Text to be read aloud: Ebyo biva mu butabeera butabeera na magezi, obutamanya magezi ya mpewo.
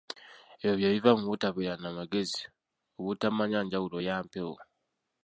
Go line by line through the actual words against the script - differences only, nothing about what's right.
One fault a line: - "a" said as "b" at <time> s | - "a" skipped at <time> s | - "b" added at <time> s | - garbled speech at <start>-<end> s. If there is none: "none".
- "bye" added at 0.8 s
- "butabeera" skipped at 1.8 s
- "magezi" said as "njawulo" at 3.6 s